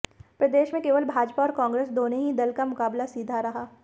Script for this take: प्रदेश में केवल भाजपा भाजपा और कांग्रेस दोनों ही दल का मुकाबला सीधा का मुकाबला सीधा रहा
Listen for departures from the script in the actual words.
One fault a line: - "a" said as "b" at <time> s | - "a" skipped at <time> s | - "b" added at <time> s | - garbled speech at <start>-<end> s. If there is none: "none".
- "भाजपा" skipped at 1.4 s
- "का मुकाबला सीधा" skipped at 3.4 s